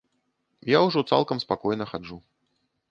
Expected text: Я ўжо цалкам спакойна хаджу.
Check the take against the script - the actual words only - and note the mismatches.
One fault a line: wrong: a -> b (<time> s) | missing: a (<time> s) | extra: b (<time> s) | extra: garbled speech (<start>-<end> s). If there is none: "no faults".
no faults